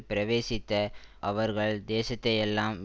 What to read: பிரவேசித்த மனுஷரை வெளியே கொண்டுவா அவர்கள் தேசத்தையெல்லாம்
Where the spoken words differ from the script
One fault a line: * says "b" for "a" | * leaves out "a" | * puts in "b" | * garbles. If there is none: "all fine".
* leaves out "மனுஷரை வெளியே கொண்டுவா"